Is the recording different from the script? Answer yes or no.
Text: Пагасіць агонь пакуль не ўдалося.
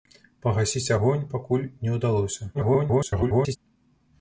yes